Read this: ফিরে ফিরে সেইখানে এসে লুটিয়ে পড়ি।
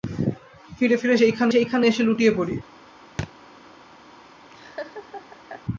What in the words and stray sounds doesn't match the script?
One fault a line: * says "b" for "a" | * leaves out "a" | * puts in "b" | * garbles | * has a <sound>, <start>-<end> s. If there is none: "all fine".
* puts in "সেইখানে"
* has a thud, 3.2-3.3 s
* has a laugh, 4.5-5.7 s